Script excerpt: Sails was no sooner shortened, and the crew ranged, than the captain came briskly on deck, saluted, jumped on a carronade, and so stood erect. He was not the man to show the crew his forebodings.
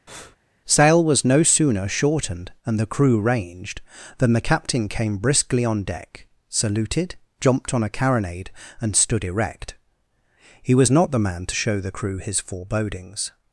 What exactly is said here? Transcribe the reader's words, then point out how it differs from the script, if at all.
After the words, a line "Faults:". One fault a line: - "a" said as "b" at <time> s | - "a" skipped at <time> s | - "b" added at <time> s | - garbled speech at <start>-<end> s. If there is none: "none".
Sail was no sooner shortened, and the crew ranged, than the captain came briskly on deck, saluted, jumped on a carronade, and stood erect. He was not the man to show the crew his forebodings.
Faults:
- "Sails" said as "Sail" at 0.7 s
- "so" skipped at 8.9 s